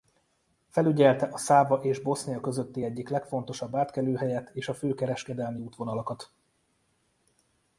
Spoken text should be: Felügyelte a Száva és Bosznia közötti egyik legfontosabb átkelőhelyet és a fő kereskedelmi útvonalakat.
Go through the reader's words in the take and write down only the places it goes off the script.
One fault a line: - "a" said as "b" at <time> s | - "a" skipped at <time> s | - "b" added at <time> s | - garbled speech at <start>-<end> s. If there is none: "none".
none